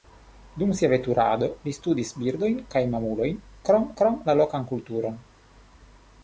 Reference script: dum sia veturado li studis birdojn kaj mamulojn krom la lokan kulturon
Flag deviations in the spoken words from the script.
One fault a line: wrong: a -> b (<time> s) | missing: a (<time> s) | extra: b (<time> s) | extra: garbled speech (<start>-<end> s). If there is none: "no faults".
extra: krom (4.0 s)